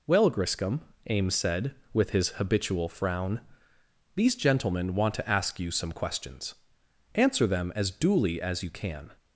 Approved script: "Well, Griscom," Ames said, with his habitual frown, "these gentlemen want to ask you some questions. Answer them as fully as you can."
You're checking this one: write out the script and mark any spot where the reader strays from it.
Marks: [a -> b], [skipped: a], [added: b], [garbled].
"Well, Griscom," Ames said, with his habitual frown, "these gentlemen want to ask you some questions. Answer them as [fully -> duly] as you can."